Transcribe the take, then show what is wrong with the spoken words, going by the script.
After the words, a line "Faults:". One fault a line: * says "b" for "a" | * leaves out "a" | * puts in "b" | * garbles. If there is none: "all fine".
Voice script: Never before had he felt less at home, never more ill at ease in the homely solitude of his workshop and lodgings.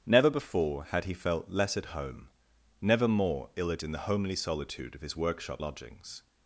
Never before had he felt less at home, never more ill at in the homely solitude of his workshop lodgings.
Faults:
* leaves out "ease"
* leaves out "and"